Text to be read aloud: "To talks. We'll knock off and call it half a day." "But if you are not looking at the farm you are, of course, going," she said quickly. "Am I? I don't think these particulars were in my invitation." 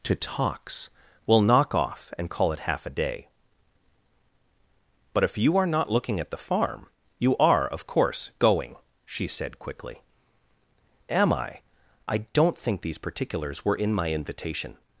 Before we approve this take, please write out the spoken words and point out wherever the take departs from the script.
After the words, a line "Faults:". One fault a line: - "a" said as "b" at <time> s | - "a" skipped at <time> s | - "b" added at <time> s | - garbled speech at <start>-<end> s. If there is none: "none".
"To talks. We'll knock off and call it half a day." "But if you are not looking at the farm you are, of course, going," she said quickly. "Am I? I don't think these particulars were in my invitation."
Faults:
none